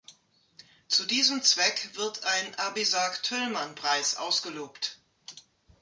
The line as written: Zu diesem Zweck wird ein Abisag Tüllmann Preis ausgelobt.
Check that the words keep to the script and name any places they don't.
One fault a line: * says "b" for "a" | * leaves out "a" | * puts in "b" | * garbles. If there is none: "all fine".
all fine